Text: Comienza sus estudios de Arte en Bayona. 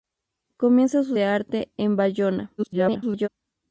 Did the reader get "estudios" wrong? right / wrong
wrong